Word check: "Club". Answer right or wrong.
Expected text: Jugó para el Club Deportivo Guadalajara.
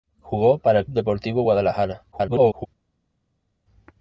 wrong